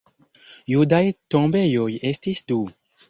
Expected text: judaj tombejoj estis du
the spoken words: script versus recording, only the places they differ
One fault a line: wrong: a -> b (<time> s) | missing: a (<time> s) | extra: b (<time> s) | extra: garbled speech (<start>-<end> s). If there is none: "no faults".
no faults